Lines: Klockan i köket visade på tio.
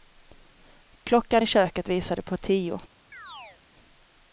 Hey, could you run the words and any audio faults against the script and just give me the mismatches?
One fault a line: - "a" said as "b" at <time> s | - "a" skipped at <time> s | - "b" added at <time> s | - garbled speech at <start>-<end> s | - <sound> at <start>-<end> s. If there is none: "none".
- chirp at 3.1-3.6 s